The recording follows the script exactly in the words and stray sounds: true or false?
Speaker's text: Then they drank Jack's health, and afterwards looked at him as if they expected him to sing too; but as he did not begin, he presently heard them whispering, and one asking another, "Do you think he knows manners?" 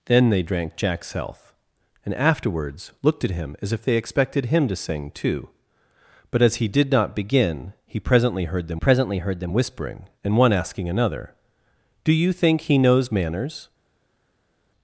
false